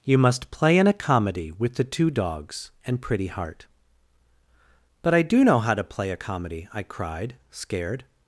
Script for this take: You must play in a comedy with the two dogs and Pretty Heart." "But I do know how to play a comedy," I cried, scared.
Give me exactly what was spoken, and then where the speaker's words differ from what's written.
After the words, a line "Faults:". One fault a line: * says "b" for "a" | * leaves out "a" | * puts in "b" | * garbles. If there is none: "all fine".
You must play in a comedy with the two dogs and Pretty Heart." "But I do know how to play a comedy," I cried, scared.
Faults:
all fine